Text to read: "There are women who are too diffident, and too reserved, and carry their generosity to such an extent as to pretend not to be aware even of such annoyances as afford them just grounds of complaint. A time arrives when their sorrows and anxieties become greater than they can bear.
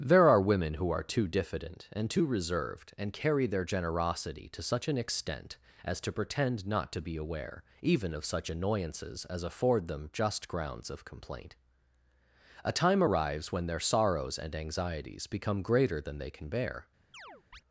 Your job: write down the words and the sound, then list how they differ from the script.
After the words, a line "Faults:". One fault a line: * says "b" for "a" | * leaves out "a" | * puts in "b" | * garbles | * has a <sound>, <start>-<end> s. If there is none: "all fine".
"There are women who are too diffident, and too reserved, and carry their generosity to such an extent as to pretend not to be aware even of such annoyances as afford them just grounds of complaint. A time arrives when their sorrows and anxieties become greater than they can bear.
Faults:
* has a chirp, 17.1-17.6 s